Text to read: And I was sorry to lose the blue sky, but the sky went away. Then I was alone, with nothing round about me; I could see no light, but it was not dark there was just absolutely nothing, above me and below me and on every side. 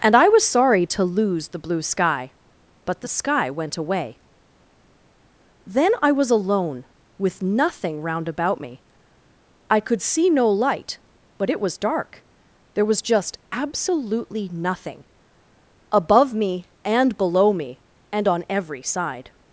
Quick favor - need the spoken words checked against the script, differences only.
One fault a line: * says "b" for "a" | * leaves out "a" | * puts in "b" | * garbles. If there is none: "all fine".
* leaves out "not"